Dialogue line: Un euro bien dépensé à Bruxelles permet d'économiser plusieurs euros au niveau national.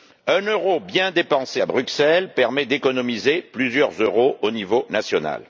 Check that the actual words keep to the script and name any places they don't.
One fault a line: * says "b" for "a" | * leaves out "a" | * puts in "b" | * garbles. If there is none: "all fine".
all fine